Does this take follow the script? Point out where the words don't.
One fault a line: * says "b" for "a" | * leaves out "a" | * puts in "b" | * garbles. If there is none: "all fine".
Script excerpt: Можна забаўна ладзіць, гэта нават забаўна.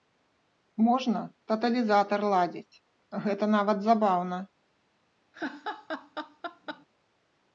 * says "таталізатар" for "забаўна"